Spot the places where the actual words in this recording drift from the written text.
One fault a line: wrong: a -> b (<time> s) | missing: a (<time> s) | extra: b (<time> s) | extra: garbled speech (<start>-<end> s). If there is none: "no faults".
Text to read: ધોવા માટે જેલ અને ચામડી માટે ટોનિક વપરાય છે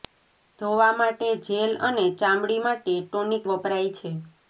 no faults